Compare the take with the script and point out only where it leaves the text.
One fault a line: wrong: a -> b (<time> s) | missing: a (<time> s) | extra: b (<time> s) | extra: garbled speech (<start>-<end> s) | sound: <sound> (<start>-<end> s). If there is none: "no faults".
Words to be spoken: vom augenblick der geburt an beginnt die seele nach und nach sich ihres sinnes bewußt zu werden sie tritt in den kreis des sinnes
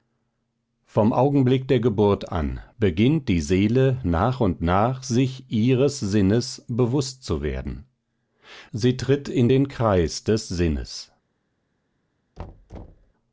sound: thud (12.4-13.1 s)